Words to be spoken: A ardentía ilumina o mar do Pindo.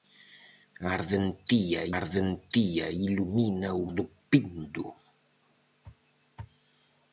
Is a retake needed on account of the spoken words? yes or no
yes